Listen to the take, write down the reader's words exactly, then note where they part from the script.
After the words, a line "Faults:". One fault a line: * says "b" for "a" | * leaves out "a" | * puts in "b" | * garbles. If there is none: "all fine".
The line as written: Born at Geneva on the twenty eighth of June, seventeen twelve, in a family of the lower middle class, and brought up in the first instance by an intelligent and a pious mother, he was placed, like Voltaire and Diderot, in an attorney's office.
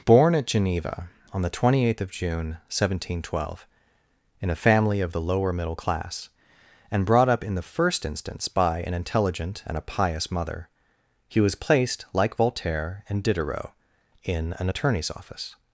Born at Geneva on the twenty eighth of June, seventeen twelve, in a family of the lower middle class, and brought up in the first instance by an intelligent and a pious mother, he was placed, like Voltaire and Diderot, in an attorney's office.
Faults:
all fine